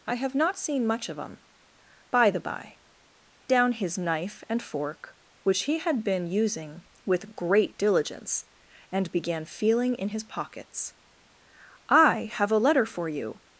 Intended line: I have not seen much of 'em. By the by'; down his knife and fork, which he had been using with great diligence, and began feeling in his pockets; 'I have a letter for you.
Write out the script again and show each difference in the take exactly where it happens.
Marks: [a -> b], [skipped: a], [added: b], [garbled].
I have not seen much of 'em. By the by'; down his knife and fork, which he had been using with great diligence, and began feeling in his pockets; 'I have a letter for you.